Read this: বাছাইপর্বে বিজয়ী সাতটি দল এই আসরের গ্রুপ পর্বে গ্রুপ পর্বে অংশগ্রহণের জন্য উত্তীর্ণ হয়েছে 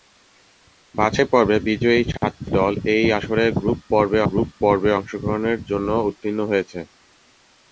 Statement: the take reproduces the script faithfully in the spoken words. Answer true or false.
true